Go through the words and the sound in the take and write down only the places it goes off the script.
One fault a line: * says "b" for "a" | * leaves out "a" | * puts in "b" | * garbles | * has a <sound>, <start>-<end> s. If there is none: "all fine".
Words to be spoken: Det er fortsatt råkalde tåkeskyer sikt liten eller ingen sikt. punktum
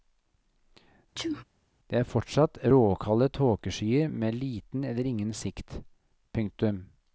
* has a sneeze, 1.2-1.4 s
* says "med" for "sikt"